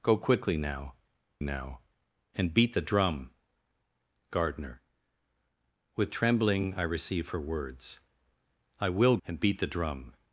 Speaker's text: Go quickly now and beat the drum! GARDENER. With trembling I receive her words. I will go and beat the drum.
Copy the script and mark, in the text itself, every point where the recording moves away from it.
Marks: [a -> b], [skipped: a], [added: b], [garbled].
Go quickly now [added: now] and beat the drum! GARDENER. With trembling I receive her words. I will [skipped: go] and beat the drum.